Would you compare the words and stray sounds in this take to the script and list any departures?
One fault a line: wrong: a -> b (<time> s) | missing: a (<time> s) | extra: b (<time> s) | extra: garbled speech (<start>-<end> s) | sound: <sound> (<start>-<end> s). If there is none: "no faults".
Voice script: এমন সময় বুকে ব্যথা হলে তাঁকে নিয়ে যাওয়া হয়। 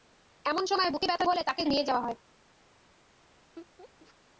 sound: laugh (3.6-4.1 s)